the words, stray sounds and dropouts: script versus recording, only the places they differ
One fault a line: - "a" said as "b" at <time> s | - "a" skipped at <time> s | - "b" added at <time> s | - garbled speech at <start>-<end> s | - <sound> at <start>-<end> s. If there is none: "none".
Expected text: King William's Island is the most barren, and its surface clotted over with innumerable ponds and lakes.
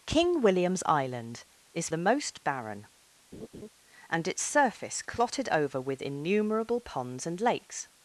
- laugh at 3.3-3.7 s